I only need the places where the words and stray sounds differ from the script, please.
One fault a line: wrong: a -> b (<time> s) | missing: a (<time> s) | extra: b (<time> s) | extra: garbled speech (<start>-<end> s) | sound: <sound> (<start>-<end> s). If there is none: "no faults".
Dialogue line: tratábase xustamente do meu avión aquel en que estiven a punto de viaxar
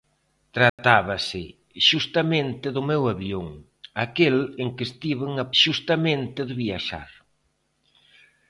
sound: dropout (0.7-0.8 s)
wrong: punto -> xustamente (5.6 s)